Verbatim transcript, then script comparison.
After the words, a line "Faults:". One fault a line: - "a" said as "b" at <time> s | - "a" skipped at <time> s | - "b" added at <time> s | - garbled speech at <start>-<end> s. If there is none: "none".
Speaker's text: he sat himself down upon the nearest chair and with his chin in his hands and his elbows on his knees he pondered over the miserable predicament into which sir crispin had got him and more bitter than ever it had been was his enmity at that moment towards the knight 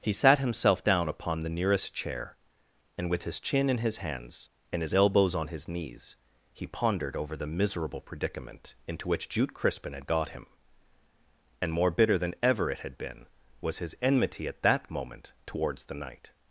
he sat himself down upon the nearest chair and with his chin in his hands and his elbows on his knees he pondered over the miserable predicament into which jute crispin had got him and more bitter than ever it had been was his enmity at that moment towards the knight
Faults:
- "sir" said as "jute" at 9.3 s